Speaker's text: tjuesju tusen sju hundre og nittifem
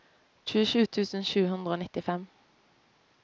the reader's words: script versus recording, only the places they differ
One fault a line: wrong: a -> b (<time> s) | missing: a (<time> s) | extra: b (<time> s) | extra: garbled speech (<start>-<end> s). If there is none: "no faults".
no faults